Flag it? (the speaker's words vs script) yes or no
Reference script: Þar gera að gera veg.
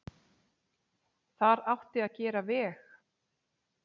yes